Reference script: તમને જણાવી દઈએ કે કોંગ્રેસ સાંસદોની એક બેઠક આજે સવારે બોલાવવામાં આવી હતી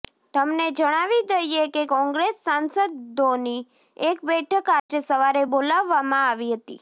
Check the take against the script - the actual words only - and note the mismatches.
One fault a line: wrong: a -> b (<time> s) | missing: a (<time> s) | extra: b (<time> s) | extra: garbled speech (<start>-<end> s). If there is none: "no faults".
no faults